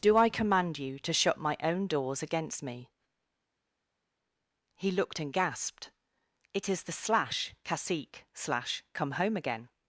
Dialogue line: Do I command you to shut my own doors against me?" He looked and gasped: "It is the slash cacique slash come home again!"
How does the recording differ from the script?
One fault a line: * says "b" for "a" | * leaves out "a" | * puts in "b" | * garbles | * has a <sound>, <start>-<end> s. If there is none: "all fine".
all fine